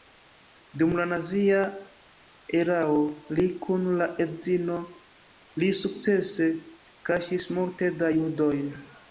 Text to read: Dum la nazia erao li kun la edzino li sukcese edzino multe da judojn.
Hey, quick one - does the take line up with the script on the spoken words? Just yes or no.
no